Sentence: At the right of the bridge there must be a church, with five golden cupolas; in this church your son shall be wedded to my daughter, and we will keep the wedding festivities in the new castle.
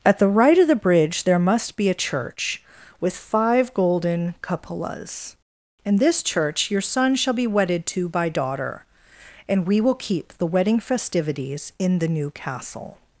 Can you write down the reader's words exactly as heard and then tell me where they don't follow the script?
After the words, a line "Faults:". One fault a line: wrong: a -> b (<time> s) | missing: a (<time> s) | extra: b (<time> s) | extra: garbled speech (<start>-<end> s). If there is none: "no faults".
At the right of the bridge there must be a church, with five golden cupolas; in this church your son shall be wedded to by daughter, and we will keep the wedding festivities in the new castle.
Faults:
wrong: my -> by (8.1 s)